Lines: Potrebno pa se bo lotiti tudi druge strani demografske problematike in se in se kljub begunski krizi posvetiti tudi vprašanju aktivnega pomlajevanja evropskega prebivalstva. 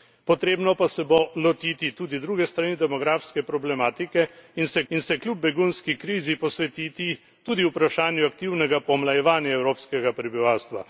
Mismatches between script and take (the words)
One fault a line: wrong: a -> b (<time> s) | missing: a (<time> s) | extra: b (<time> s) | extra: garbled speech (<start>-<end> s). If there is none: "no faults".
no faults